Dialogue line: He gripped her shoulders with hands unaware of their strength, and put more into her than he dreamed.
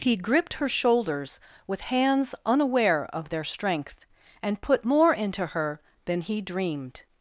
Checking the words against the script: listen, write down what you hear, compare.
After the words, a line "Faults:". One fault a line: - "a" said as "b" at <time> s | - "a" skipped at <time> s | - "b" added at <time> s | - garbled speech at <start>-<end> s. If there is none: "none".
He gripped her shoulders with hands unaware of their strength, and put more into her than he dreamed.
Faults:
none